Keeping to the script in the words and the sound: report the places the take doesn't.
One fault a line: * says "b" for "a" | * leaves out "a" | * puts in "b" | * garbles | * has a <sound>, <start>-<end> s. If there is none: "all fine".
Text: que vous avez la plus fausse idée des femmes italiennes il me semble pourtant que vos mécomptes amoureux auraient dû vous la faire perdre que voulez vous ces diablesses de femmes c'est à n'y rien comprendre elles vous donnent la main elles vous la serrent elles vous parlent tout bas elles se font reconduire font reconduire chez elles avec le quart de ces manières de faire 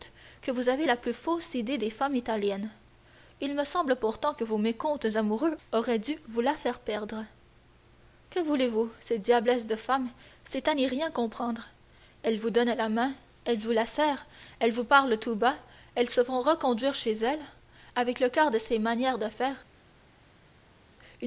* leaves out "font reconduire"